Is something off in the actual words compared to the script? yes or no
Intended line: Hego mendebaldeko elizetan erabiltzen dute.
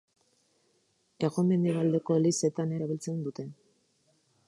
no